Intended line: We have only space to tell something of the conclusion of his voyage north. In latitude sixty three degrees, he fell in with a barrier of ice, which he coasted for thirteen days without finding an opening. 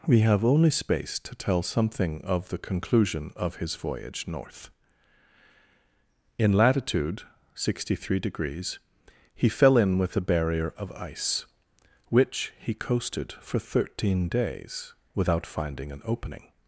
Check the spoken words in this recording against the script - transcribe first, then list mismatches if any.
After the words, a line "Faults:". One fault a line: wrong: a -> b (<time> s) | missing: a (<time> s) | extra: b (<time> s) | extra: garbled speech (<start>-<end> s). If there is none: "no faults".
We have only space to tell something of the conclusion of his voyage north. In latitude sixty three degrees, he fell in with a barrier of ice, which he coasted for thirteen days without finding an opening.
Faults:
no faults